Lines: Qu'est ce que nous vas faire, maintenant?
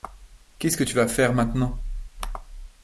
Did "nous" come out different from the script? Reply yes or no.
yes